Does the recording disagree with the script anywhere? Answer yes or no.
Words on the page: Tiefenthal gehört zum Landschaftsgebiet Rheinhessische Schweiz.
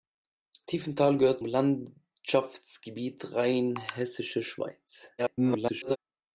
yes